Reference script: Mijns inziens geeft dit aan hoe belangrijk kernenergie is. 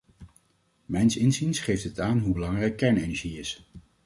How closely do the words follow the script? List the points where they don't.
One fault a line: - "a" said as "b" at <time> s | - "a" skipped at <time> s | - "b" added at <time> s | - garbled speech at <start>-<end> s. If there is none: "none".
none